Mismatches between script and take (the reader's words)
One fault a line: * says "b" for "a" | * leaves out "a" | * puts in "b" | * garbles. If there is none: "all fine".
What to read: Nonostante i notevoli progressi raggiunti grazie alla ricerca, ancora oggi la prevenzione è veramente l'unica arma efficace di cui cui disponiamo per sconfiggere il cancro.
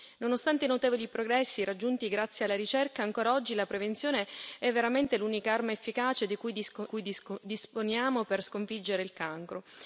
all fine